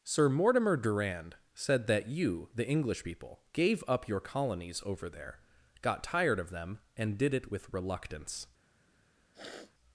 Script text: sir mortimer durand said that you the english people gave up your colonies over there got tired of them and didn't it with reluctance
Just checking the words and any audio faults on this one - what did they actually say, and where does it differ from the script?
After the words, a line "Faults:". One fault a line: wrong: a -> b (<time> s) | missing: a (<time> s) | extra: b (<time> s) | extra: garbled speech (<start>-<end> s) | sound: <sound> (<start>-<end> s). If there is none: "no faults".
sir mortimer durand said that you the english people gave up your colonies over there got tired of them and did it with reluctance
Faults:
wrong: didn't -> did (7.2 s)
sound: sniff (9.3-9.7 s)